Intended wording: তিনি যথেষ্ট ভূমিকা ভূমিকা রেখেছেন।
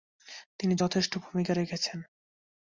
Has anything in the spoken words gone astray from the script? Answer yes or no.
yes